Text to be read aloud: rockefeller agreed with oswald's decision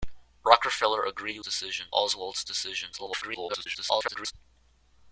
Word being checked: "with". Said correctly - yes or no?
no